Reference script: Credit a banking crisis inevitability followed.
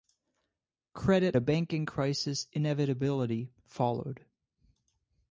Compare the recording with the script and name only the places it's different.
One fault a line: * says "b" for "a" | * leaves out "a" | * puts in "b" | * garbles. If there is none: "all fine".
all fine